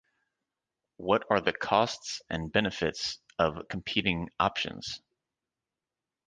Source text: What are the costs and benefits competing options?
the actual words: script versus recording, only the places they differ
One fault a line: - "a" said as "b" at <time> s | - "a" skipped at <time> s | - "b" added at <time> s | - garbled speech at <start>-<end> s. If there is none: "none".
- "of" added at 3.4 s